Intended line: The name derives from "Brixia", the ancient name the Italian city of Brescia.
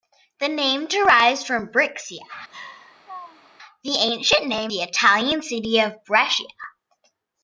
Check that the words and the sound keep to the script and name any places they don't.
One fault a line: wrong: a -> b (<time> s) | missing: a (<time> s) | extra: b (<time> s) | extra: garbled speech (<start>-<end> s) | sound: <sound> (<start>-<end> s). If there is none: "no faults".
sound: laugh (2.5-3.5 s)